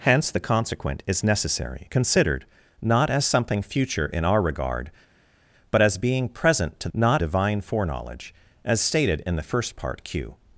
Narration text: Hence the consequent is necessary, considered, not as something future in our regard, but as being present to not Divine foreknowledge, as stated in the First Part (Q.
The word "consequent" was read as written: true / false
true